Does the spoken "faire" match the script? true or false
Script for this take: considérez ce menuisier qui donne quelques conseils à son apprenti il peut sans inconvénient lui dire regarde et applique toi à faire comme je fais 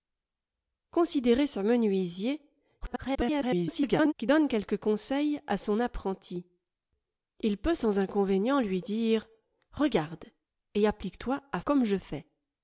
false